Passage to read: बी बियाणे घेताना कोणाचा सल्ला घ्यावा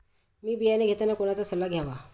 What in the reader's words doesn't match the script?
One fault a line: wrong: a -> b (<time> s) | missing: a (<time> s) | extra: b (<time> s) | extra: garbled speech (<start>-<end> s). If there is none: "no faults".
no faults